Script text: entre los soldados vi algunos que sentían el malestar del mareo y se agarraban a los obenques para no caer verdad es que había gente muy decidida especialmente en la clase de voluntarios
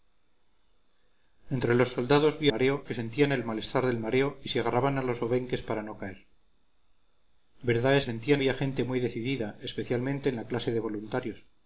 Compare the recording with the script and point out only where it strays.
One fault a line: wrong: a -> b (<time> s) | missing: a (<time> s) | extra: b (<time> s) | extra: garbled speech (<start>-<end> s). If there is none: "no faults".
wrong: algunos -> mareo (2.5 s)
wrong: que -> sentían (8.0 s)